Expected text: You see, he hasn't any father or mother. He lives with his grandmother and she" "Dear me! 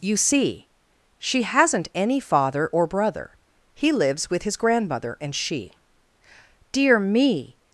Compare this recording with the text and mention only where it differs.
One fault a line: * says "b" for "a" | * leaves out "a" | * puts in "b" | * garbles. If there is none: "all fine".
* says "she" for "he"
* says "brother" for "mother"